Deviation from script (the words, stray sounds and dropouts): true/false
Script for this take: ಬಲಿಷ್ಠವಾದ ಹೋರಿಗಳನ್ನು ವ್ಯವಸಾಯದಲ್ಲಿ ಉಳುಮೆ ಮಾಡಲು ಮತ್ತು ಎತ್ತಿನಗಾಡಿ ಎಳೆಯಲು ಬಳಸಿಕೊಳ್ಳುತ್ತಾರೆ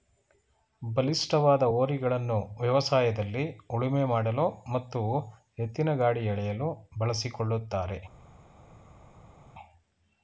false